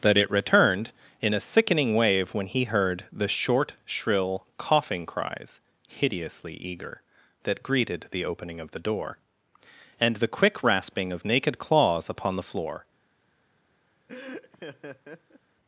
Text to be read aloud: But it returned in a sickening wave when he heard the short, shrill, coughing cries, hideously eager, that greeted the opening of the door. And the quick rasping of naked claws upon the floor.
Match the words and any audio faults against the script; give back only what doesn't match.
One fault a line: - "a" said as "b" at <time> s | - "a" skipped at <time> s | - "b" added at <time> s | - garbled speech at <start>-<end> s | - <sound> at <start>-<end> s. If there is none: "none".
- "But" said as "That" at 0.0 s
- laugh at 14.1-15.4 s